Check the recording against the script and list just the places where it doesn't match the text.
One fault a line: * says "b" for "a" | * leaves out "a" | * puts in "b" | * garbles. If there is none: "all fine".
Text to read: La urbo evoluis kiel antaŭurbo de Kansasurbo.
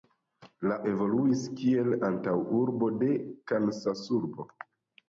* leaves out "urbo"